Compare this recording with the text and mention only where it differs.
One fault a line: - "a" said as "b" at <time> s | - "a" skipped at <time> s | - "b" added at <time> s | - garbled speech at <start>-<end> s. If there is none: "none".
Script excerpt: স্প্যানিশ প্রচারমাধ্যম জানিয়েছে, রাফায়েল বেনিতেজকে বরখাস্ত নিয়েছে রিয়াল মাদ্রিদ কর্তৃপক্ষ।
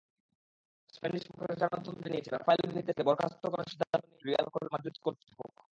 - "করার সিদ্ধান্ত" added at 3.4 s